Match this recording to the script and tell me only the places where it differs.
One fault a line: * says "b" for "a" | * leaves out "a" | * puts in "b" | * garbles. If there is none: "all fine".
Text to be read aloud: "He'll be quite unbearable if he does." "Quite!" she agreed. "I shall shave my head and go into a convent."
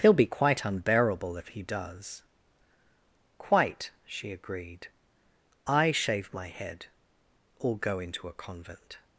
* leaves out "shall"
* says "or" for "and"